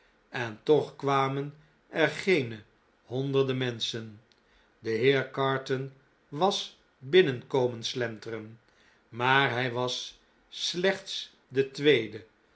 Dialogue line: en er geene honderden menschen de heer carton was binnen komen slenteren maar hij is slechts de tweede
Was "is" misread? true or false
true